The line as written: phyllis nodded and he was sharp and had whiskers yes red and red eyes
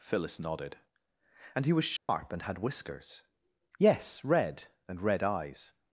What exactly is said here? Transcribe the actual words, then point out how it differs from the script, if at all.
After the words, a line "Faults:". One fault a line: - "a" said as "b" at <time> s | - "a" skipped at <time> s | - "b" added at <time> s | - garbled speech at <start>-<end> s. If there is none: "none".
phyllis nodded and he was sharp and had whiskers yes red and red eyes
Faults:
none